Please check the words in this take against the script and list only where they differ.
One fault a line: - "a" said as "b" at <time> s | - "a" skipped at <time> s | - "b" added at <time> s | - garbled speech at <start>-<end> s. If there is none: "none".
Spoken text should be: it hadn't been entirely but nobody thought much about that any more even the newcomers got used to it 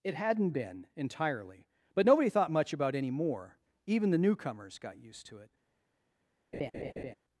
- "that" skipped at 3.0 s